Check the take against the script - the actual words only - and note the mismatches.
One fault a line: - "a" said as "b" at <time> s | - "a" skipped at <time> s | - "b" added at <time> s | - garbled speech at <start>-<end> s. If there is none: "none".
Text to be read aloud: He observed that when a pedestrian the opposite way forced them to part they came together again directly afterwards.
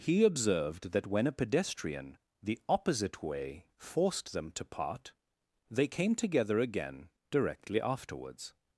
none